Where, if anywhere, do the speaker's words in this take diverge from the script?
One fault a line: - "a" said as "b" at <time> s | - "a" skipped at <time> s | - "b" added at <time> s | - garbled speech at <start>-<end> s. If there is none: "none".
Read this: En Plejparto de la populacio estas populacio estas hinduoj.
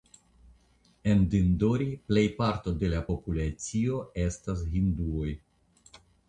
- "Dindori" added at 1.3 s
- "populacio estas" skipped at 4.6 s